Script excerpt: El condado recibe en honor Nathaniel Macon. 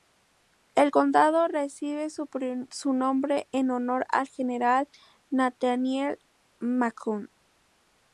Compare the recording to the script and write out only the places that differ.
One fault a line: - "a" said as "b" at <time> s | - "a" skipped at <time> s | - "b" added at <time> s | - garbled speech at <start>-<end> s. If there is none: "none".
- "su nombre" added at 2.1 s
- "al general" added at 4.1 s